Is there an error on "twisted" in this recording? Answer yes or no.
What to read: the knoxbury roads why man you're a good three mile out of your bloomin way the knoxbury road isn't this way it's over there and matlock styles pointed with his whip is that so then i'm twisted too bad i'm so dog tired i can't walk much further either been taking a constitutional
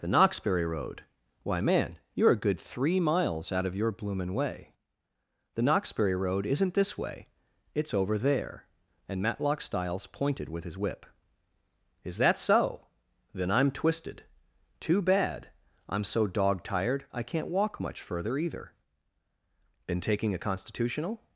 no